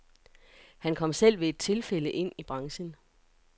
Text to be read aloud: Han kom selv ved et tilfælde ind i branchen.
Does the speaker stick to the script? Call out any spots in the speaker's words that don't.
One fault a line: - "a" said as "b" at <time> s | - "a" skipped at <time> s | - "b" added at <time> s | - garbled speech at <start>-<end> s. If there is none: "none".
none